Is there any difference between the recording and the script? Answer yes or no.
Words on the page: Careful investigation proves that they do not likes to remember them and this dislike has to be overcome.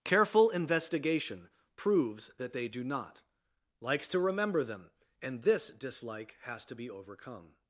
no